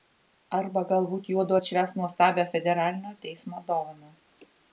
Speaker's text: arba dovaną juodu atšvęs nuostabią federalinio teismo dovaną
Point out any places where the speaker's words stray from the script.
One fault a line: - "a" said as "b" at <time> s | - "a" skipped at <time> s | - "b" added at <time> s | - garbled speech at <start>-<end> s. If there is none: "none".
- "dovaną" said as "galbūt" at 0.9 s